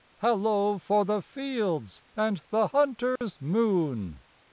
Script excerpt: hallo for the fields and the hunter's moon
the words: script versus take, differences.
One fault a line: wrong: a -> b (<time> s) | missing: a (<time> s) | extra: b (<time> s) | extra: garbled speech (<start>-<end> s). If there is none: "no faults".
no faults